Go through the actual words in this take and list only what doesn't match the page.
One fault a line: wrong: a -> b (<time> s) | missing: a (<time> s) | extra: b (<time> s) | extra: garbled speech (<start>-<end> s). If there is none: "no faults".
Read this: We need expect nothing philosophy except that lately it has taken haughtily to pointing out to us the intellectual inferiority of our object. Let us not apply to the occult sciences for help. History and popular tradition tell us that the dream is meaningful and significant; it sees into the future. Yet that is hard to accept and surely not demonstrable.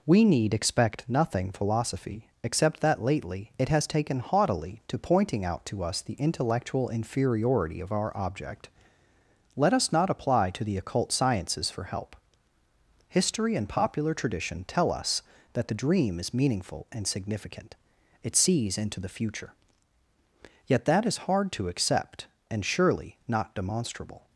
no faults